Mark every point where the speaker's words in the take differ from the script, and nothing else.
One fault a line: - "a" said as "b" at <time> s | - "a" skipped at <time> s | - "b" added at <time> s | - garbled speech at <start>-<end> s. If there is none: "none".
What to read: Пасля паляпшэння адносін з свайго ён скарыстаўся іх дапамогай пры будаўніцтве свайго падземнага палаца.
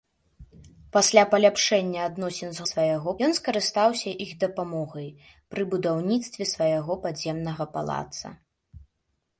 none